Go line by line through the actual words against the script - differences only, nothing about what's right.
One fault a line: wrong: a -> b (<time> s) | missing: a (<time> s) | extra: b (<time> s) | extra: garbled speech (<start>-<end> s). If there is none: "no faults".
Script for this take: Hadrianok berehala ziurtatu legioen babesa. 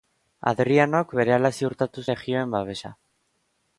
no faults